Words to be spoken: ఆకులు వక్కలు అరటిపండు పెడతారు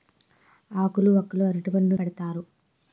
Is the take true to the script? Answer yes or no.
yes